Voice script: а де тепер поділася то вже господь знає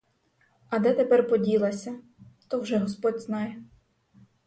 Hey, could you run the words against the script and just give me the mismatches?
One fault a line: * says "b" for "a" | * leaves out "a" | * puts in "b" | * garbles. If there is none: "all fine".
all fine